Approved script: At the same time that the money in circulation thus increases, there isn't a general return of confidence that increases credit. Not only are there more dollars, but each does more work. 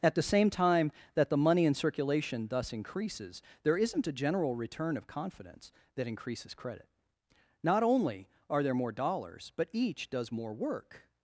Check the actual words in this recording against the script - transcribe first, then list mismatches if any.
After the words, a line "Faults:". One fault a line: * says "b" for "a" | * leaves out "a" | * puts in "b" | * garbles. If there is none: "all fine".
At the same time that the money in circulation thus increases, there isn't a general return of confidence that increases credit. Not only are there more dollars, but each does more work.
Faults:
all fine